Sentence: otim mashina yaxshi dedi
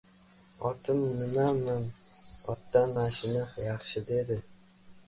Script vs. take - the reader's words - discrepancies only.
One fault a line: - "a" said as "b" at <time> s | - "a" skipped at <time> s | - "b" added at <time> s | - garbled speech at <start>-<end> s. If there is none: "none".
- "nimam otdan" added at 1.2 s